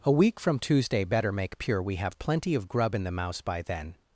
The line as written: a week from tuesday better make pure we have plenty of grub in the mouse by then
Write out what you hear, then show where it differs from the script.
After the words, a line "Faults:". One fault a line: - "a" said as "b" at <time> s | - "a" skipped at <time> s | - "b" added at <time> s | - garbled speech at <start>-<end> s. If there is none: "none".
a week from tuesday better make pure we have plenty of grub in the mouse by then
Faults:
none